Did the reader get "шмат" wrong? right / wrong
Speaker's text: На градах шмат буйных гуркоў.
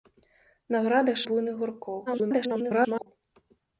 wrong